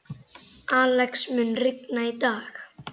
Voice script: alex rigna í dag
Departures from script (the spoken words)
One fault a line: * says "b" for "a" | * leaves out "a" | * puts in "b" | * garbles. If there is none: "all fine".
* puts in "mun"